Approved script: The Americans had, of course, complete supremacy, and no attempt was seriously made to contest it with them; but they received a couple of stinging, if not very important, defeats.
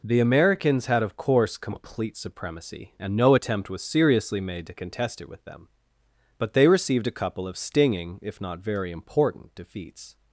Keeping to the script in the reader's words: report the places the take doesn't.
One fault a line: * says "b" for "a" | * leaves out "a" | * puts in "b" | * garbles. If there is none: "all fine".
all fine